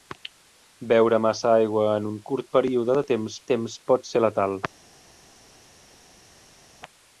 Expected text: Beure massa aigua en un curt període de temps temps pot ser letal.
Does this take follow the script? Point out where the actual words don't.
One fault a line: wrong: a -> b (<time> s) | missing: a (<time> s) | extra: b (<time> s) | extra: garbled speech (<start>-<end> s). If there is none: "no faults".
no faults